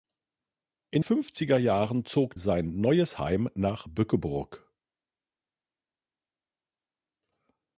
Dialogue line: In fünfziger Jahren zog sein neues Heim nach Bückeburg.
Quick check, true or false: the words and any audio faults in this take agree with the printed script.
true